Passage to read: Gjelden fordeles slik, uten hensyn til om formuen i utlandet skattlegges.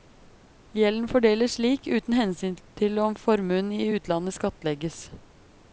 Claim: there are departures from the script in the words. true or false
false